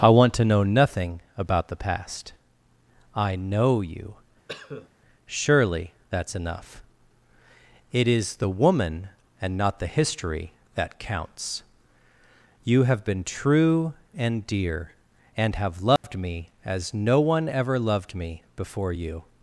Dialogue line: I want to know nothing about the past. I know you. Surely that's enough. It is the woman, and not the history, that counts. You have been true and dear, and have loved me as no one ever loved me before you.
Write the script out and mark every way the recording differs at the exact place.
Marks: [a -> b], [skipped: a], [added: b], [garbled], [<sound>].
I want to know nothing about the past. I know you. [cough] Surely that's enough. It is the woman, and not the history, that counts. You have been true and dear, and have loved [dropout] me as no one ever loved me before you.